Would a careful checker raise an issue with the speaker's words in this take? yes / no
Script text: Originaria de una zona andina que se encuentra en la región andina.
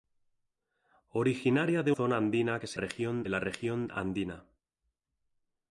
yes